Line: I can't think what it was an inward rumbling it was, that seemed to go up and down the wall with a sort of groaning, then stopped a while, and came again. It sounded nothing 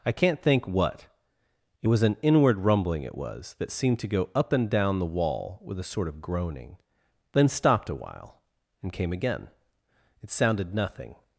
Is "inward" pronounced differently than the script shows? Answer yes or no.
no